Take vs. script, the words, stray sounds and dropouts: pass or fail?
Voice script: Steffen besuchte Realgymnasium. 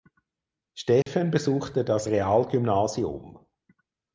fail